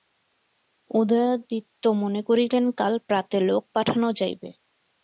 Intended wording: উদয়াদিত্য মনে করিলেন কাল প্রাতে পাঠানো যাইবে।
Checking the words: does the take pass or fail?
fail